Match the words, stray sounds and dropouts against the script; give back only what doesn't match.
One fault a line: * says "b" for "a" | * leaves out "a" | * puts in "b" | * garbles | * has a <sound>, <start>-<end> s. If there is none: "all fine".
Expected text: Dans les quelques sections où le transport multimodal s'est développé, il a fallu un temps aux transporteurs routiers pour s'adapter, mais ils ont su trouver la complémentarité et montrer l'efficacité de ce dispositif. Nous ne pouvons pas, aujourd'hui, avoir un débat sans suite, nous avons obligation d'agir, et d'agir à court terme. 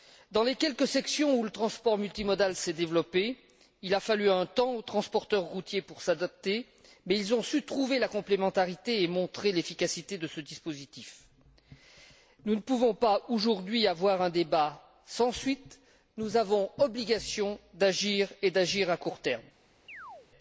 * has a chirp, 19.9-20.3 s